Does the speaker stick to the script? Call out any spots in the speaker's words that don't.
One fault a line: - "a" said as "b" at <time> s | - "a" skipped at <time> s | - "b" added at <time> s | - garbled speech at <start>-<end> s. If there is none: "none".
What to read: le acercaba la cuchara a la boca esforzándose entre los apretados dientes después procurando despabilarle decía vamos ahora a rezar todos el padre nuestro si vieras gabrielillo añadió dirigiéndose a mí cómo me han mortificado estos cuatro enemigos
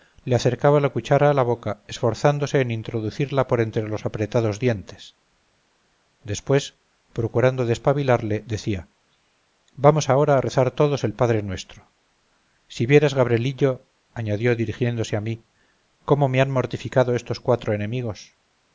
- "en introducirla por" added at 2.6 s